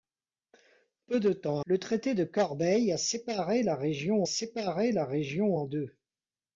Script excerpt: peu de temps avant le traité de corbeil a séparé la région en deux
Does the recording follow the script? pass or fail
fail